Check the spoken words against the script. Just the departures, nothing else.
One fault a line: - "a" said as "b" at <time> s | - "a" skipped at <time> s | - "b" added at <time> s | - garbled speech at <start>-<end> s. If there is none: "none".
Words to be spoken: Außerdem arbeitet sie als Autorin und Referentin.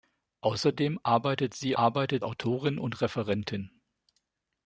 - "als" said as "arbeitet" at 1.7 s